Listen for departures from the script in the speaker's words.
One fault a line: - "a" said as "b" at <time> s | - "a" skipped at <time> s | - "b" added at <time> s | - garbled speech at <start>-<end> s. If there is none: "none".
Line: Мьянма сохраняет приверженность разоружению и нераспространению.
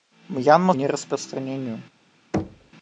- "сохраняет приверженность разоружению" skipped at 0.7 s